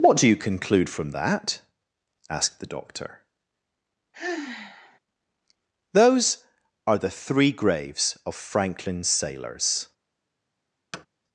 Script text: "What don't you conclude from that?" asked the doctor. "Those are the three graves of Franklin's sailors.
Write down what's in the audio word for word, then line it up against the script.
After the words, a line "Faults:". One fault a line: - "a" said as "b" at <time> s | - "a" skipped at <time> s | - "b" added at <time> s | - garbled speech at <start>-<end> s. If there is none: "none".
"What do you conclude from that?" asked the doctor. "Those are the three graves of Franklin's sailors.
Faults:
- "don't" said as "do" at 0.2 s